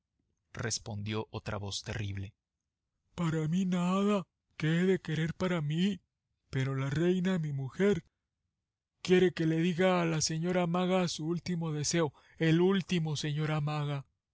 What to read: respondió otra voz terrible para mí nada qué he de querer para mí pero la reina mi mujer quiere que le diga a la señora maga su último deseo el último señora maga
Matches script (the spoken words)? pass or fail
pass